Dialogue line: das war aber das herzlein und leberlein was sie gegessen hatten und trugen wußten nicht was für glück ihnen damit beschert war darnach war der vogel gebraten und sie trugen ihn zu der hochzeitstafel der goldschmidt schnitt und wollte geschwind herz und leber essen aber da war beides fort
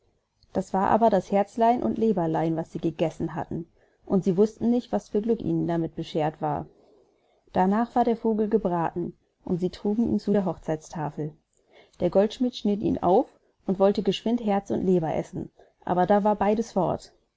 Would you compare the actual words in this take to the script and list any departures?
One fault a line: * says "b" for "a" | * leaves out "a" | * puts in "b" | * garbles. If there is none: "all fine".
* says "sie" for "trugen"
* puts in "ihn auf"